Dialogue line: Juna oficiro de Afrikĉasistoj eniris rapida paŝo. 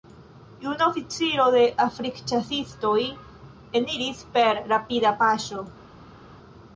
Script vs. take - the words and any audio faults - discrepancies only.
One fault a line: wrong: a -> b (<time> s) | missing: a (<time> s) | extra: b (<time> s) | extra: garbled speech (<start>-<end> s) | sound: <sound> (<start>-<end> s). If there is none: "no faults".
extra: per (4.4 s)